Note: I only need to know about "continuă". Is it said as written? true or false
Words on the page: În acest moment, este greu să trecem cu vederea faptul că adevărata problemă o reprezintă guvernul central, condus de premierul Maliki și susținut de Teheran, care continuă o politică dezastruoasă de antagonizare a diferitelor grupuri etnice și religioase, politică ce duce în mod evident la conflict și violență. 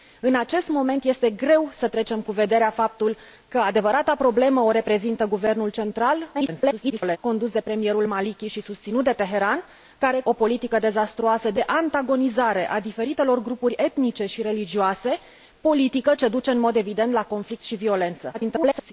false